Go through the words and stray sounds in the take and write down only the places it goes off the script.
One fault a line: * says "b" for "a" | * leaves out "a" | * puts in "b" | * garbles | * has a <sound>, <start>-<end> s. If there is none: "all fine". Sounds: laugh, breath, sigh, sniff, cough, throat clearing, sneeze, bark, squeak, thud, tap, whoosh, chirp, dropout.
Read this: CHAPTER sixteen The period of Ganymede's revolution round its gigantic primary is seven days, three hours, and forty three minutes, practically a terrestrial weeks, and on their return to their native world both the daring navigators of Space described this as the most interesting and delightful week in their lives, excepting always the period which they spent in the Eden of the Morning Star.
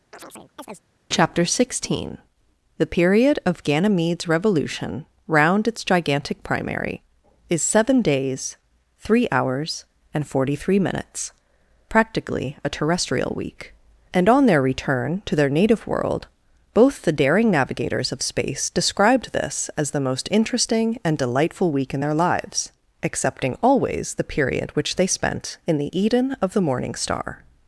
* has a chirp, 0.1-0.9 s
* says "week" for "weeks"